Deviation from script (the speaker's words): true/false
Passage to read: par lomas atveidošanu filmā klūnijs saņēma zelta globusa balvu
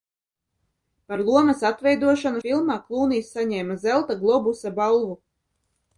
false